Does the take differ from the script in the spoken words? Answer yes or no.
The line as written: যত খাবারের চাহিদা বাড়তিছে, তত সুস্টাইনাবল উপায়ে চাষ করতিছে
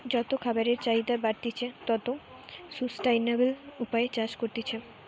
no